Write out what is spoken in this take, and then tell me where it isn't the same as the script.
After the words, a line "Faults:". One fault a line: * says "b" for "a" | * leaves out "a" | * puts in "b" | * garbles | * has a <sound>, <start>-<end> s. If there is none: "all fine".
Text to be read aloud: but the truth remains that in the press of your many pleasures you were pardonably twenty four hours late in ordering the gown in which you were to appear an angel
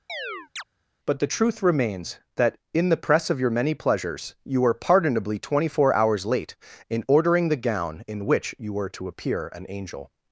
but the truth remains that in the press of your many pleasures you were pardonably twenty four hours late in ordering the gown in which you were to appear an angel
Faults:
* has a chirp, 0.1-0.6 s